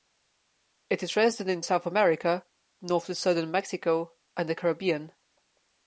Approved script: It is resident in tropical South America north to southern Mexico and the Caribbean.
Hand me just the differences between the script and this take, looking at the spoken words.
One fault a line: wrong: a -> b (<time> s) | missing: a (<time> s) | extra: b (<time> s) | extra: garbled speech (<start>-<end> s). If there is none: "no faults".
missing: tropical (1.6 s)